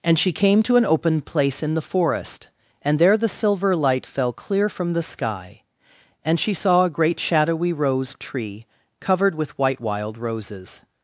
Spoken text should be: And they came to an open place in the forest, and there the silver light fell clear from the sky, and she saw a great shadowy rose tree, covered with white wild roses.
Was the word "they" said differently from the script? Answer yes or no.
yes